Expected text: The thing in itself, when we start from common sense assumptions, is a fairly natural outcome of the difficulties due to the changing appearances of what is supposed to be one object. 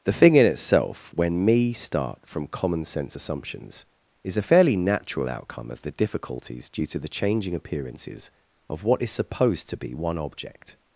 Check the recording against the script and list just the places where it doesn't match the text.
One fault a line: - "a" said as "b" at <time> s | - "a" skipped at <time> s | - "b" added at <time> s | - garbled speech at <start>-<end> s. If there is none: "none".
- "we" said as "me" at 1.4 s